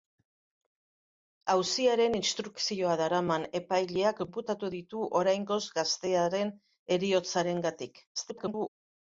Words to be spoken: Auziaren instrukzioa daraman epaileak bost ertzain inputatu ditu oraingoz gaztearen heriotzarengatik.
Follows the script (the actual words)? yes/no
no